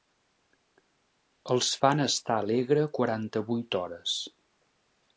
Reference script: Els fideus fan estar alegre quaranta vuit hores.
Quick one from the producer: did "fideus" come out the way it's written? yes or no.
no